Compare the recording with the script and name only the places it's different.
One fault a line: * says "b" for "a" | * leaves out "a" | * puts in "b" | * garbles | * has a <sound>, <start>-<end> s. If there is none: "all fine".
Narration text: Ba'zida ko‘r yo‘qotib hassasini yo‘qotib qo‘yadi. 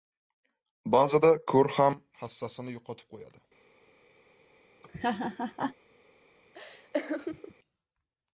* says "ham" for "yo‘qotib"
* has a laugh, 4.8-5.8 s
* has a laugh, 6.5-7.5 s